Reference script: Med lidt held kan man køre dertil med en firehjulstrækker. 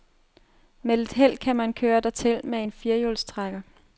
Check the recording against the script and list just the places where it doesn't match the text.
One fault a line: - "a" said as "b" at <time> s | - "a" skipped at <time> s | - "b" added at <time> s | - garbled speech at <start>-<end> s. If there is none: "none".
none